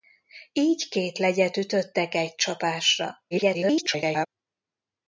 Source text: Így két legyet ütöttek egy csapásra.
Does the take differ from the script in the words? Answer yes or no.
yes